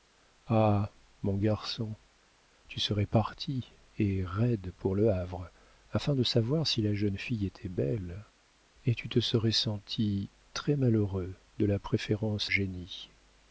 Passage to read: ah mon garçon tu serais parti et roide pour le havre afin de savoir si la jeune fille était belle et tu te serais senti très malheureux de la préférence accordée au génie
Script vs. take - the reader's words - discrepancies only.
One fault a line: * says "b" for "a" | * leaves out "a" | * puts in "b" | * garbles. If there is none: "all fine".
* leaves out "accordée au"